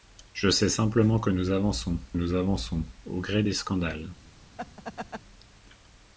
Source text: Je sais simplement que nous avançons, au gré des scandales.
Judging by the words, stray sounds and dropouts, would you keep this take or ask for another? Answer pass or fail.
fail